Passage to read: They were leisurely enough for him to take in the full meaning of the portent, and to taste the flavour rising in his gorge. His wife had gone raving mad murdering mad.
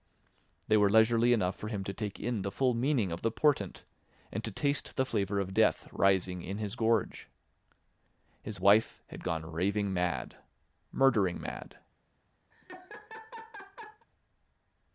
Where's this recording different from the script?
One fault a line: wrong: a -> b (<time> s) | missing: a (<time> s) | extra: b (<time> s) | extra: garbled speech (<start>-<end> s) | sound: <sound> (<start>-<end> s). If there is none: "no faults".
extra: of death (5.4 s)
sound: laugh (12.5-14.1 s)